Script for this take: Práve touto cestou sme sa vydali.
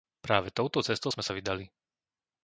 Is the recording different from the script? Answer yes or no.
no